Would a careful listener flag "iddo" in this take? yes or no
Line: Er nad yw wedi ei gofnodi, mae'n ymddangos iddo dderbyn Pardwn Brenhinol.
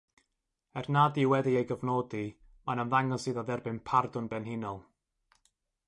no